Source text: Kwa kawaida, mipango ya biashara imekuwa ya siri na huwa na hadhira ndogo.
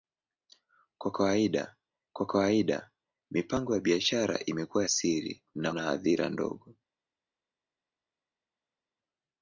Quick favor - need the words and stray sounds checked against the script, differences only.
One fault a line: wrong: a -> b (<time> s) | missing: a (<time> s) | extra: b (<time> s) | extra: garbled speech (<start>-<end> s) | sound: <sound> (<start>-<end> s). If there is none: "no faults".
extra: kwa kawaida (2.1 s)
missing: ya (4.8 s)
missing: huwa (5.7 s)